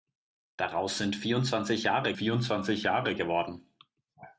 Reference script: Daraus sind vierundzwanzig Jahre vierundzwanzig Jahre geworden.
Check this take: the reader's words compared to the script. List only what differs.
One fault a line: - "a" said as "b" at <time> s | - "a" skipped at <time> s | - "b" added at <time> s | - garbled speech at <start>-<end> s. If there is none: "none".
none